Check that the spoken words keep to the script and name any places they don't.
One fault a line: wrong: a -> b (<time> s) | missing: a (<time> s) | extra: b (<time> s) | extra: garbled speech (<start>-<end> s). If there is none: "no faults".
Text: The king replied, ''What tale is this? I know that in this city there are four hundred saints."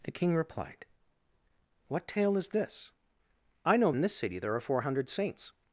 missing: that (3.9 s)